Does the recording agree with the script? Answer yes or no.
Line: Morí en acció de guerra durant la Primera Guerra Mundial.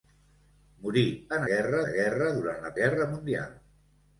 no